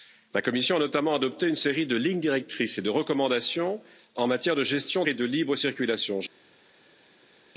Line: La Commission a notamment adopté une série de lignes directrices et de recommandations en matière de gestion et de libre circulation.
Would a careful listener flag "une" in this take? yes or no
no